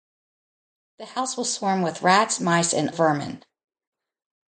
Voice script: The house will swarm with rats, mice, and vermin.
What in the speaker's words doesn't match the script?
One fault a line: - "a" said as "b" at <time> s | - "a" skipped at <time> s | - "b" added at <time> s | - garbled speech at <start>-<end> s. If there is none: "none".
none